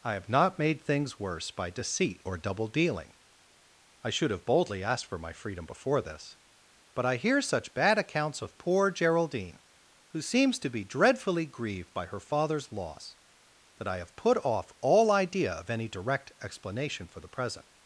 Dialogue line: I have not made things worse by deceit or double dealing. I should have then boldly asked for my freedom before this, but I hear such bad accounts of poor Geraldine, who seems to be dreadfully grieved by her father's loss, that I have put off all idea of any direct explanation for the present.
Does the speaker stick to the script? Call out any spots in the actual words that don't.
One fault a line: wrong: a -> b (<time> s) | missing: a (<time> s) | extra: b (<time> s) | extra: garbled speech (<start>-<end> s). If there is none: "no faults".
missing: then (4.5 s)